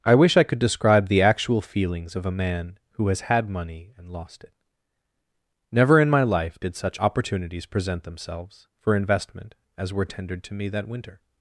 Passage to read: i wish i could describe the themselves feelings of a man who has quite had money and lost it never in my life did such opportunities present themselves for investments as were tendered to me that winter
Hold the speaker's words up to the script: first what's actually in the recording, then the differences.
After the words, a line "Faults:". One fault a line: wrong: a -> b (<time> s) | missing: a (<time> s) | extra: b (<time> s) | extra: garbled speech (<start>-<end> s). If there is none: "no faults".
i wish i could describe the actual feelings of a man who has had money and lost it never in my life did such opportunities present themselves for investment as were tendered to me that winter
Faults:
wrong: themselves -> actual (1.2 s)
missing: quite (3.3 s)
wrong: investments -> investment (8.9 s)